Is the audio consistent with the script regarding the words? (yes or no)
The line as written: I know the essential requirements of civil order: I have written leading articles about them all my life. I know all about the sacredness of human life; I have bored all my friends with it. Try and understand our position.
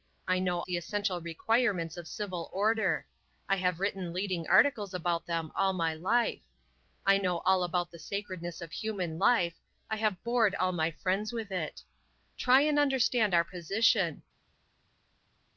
yes